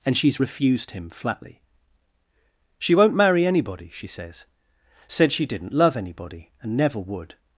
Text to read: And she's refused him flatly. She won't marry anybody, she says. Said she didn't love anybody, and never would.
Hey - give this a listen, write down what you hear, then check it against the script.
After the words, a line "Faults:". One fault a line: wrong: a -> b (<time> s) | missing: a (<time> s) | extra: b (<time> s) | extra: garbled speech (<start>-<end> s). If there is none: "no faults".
And she's refused him flatly. She won't marry anybody, she says. Said she didn't love anybody, and never would.
Faults:
no faults